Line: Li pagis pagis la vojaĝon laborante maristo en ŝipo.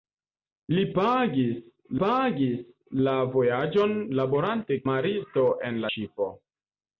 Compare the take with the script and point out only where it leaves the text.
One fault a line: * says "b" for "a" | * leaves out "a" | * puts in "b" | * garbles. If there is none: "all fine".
all fine